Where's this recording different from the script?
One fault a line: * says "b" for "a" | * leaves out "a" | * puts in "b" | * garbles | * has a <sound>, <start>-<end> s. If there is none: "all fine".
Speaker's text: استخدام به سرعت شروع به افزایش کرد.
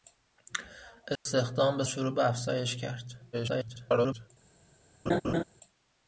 * has a dropout, 1.2-1.3 s
* leaves out "سرعت"
* garbles
* has a laugh, 5.1-5.4 s